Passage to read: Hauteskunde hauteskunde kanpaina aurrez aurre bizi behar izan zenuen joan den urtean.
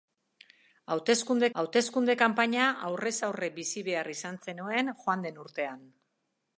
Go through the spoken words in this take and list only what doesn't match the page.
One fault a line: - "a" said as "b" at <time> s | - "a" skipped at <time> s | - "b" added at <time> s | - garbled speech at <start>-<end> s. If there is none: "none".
none